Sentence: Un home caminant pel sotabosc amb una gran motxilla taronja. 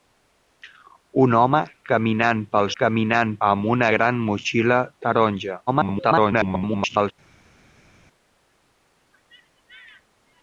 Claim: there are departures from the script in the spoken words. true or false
true